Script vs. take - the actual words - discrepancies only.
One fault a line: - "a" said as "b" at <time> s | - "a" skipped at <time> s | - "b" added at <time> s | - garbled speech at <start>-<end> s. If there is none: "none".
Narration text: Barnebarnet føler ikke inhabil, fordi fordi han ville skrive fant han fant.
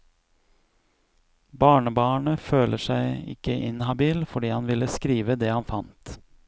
- "seg" added at 2.8 s
- "fordi" skipped at 4.5 s
- "fant" said as "det" at 5.4 s